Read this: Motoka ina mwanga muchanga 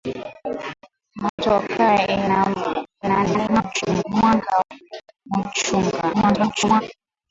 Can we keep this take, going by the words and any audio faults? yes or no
no